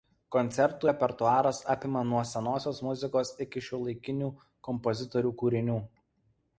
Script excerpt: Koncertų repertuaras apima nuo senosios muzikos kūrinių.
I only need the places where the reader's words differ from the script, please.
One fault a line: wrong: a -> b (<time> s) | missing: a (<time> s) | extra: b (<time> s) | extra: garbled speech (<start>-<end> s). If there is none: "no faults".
extra: iki šiuolaikinių kompozitorių (3.5 s)